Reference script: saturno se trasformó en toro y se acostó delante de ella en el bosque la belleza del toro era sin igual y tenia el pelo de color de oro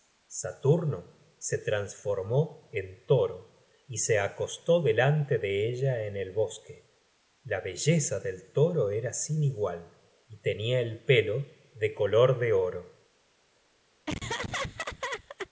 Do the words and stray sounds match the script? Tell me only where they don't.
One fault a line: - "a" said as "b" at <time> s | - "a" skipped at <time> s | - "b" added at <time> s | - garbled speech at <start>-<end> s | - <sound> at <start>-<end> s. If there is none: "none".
- laugh at 14.1-15.5 s